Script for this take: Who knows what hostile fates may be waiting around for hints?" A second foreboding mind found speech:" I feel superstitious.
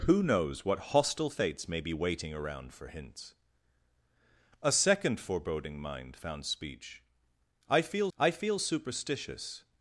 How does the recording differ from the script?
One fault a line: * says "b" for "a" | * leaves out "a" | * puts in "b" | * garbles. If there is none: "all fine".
* puts in "I feel"